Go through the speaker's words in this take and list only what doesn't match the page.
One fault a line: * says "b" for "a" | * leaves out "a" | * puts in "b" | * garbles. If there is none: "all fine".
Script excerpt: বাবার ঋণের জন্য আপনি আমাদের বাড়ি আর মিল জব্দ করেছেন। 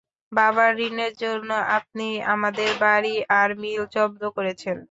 all fine